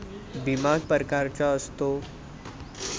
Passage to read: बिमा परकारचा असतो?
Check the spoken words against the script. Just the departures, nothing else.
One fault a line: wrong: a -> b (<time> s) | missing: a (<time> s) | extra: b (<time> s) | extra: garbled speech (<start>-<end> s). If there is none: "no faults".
no faults